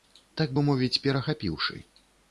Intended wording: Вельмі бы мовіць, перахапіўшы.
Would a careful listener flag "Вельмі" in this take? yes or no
yes